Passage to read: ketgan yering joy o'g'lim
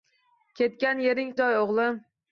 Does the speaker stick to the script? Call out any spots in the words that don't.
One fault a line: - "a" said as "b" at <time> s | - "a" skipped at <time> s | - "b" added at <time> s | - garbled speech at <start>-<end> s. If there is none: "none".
none